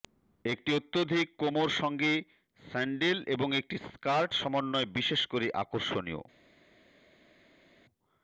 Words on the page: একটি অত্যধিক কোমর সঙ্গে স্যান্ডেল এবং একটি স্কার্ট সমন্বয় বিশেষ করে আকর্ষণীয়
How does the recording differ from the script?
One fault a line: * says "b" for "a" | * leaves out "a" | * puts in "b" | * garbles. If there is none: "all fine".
all fine